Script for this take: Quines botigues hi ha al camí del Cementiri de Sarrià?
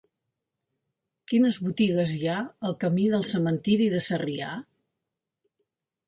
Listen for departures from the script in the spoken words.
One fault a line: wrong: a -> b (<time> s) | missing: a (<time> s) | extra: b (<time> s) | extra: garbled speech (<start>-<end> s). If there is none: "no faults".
no faults